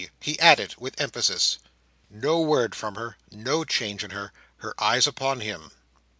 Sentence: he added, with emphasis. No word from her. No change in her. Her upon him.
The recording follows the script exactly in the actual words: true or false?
false